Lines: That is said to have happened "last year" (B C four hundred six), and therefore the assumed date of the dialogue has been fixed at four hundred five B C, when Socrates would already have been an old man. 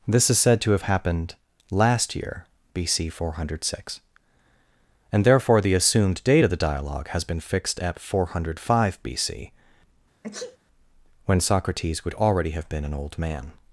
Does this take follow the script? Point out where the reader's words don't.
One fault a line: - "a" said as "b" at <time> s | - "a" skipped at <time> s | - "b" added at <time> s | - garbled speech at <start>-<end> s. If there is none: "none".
- "That" said as "This" at 0.1 s